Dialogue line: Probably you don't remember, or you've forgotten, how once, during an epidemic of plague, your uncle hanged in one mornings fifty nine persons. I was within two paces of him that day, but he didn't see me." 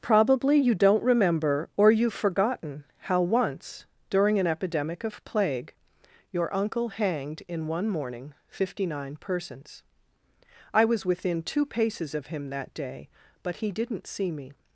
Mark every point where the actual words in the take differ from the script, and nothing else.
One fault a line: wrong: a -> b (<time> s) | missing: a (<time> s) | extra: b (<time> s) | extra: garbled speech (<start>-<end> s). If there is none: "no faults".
wrong: mornings -> morning (7.9 s)